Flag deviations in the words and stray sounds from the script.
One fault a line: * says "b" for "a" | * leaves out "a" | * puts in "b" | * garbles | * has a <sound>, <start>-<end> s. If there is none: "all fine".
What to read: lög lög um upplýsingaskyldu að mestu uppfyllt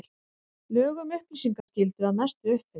* leaves out "lög"
* has a dropout, 1.6-1.7 s